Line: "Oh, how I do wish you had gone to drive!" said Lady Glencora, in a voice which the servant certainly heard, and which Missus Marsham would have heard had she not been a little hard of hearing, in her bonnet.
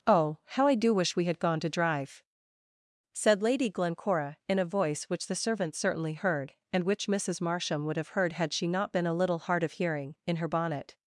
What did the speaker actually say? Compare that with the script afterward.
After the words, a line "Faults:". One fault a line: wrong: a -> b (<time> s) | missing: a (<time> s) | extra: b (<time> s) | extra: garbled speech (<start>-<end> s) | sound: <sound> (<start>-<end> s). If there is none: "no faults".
"Oh, how I do wish we had gone to drive!" said Lady Glencora, in a voice which the servant certainly heard, and which Missus Marsham would have heard had she not been a little hard of hearing, in her bonnet.
Faults:
wrong: you -> we (1.1 s)